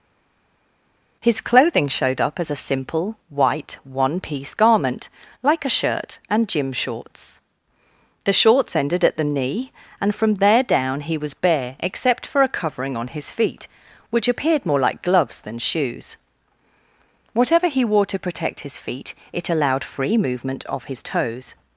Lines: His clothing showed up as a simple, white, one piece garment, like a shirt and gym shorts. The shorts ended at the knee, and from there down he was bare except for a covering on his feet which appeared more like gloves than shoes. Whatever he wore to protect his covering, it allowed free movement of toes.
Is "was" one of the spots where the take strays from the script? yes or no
no